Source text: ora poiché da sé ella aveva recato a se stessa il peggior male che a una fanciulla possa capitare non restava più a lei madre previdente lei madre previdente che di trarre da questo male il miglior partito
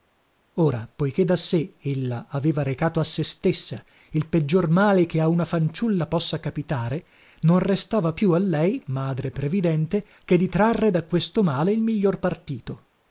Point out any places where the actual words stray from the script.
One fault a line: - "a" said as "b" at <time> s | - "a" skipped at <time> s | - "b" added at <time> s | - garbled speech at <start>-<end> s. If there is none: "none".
- "lei madre previdente" skipped at 10.1 s